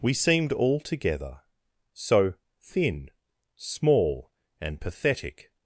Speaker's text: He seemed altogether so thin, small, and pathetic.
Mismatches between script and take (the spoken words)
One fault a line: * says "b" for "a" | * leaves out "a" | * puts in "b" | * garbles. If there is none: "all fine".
* says "We" for "He"